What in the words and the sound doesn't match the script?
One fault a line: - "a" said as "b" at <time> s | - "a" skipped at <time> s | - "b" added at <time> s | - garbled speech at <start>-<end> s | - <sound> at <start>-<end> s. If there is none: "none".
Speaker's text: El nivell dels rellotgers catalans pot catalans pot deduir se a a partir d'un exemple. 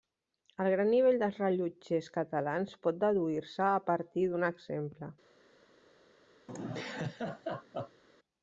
- "gran" added at 0.8 s
- "catalans pot" skipped at 3.0 s
- "a" skipped at 3.8 s
- laugh at 6.5-8.0 s